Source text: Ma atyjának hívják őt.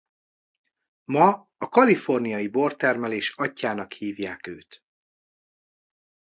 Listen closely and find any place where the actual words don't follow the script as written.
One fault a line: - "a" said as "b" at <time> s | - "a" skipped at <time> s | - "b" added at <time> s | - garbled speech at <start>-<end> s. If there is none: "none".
- "a kaliforniai bortermelés" added at 1.6 s